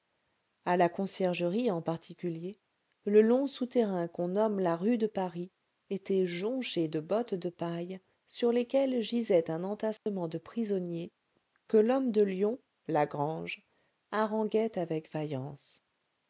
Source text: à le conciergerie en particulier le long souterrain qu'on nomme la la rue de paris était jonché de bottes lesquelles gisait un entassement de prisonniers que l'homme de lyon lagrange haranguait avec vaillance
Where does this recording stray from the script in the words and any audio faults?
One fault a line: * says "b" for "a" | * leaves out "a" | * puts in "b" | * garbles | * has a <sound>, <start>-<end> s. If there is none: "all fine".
* says "la" for "le"
* leaves out "la"
* puts in "de paille sur"
* has a dropout, 10.0-10.1 s